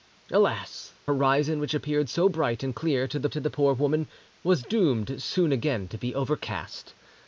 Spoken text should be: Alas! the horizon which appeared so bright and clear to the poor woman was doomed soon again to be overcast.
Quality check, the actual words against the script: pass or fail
fail